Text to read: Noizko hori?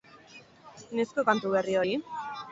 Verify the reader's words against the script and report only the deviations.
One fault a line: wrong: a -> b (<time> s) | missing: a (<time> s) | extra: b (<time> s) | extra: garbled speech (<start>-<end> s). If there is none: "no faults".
extra: kantu berri (1.3 s)